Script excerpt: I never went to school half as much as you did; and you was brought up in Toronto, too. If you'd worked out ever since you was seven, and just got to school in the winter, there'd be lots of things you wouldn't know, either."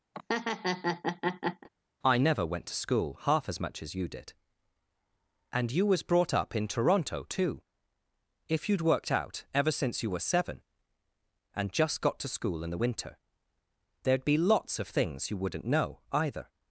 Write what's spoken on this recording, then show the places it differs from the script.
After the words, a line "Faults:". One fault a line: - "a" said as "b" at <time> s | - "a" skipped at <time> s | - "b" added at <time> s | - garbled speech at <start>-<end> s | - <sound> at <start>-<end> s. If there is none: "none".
I never went to school half as much as you did; and you was brought up in Toronto, too. If you'd worked out ever since you were seven, and just got to school in the winter, there'd be lots of things you wouldn't know, either."
Faults:
- laugh at 0.1-1.7 s
- "was" said as "were" at 10.1 s